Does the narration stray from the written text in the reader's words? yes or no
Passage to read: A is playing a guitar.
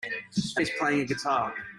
no